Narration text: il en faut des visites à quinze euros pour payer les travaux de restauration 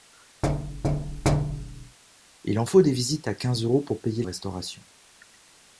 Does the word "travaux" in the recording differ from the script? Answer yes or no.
yes